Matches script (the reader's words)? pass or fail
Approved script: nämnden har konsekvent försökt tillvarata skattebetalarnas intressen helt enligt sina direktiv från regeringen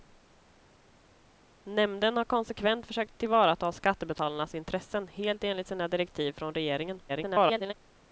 fail